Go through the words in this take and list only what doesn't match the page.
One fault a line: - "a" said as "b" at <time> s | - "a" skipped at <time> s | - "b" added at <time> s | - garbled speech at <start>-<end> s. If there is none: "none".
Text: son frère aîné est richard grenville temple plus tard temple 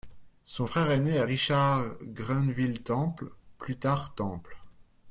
none